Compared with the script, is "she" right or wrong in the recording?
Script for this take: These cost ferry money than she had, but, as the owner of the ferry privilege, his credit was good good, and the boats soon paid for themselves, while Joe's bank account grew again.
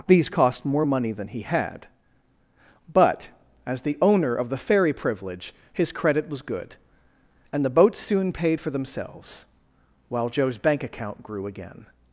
wrong